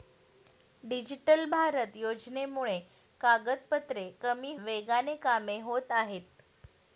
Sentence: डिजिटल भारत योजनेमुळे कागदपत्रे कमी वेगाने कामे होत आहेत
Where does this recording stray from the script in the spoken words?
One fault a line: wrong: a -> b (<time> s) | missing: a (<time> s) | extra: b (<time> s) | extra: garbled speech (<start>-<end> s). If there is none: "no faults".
no faults